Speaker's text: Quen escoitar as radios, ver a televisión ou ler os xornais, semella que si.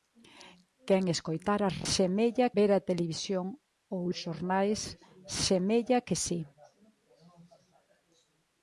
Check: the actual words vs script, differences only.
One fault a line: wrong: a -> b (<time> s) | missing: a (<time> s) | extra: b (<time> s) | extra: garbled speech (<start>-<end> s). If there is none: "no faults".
wrong: radios -> semella (1.9 s)
missing: ler (4.0 s)